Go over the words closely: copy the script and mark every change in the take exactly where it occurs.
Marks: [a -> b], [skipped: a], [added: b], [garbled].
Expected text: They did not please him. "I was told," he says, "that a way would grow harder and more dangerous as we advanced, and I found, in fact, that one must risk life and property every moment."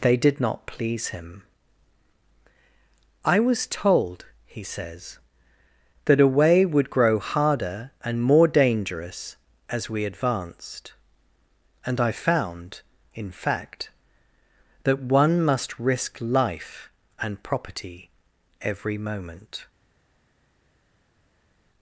They did not please him. "I was told," he says, "that a way would grow harder and more dangerous as we advanced, and I found, in fact, that one must risk life and property every moment."